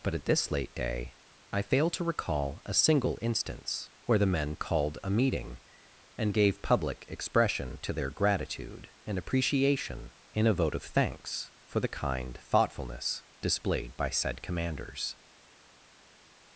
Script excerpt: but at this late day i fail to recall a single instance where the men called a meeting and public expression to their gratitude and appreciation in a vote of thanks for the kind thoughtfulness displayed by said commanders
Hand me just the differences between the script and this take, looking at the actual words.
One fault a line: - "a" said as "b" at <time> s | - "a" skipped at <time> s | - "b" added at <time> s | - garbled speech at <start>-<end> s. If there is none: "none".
- "gave" added at 6.3 s